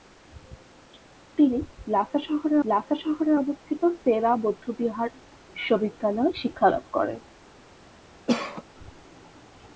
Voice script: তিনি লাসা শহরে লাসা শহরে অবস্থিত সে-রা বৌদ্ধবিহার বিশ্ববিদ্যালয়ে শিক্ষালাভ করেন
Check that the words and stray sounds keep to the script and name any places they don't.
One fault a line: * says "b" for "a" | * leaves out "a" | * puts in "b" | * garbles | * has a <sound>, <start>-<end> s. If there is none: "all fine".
* has a cough, 8.3-8.6 s